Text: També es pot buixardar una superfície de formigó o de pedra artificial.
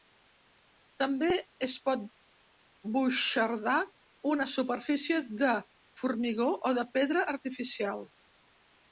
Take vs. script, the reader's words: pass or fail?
pass